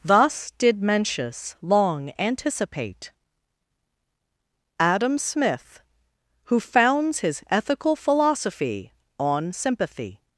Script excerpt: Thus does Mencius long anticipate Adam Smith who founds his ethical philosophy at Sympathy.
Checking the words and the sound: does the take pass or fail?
fail